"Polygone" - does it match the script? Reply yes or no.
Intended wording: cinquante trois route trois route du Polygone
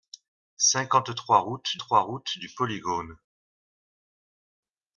yes